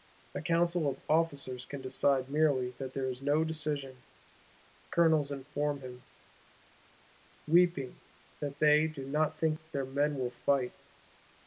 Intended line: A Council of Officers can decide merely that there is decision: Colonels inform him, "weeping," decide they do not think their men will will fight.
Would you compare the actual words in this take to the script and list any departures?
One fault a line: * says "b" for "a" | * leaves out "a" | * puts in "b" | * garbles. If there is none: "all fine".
* puts in "no"
* says "that" for "decide"
* leaves out "will"